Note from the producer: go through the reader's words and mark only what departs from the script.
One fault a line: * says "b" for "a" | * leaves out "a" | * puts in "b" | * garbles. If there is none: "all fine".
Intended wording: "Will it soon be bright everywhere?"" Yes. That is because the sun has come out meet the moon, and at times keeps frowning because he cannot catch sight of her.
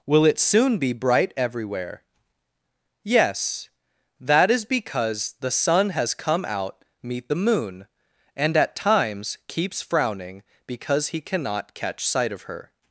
all fine